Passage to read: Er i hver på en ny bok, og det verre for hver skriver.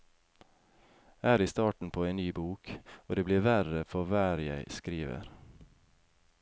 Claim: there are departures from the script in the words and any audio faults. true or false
true